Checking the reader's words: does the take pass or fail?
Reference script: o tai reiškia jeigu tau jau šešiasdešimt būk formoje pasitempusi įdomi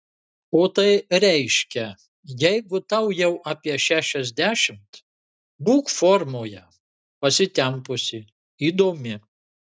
fail